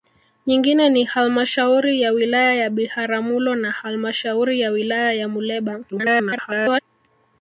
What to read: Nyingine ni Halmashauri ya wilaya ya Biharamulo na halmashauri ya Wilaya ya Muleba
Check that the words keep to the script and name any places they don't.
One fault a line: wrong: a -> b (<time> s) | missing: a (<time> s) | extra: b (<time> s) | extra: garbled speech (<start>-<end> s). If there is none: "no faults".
extra: garbled speech (5.9-6.8 s)